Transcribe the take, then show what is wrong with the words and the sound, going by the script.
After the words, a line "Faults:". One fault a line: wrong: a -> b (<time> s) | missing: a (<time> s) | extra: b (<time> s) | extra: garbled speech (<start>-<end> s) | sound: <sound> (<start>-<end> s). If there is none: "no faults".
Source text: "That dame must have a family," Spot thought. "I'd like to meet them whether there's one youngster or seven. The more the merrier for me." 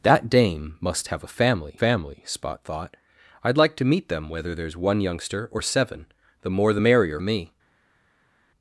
"That dame must have a family family," Spot thought. "I'd like to meet them whether there's one youngster or seven. The more the merrier me."
Faults:
extra: family (1.8 s)
missing: for (7.2 s)